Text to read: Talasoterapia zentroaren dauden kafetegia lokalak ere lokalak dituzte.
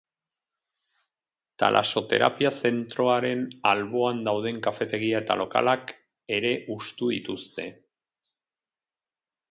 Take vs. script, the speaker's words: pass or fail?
fail